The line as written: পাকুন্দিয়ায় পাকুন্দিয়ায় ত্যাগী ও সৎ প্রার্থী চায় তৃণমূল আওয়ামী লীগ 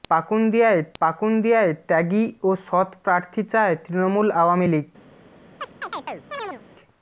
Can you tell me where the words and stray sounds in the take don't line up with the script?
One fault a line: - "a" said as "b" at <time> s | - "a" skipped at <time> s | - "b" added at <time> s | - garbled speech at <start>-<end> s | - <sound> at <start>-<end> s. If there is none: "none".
- chirp at 5.6-6.6 s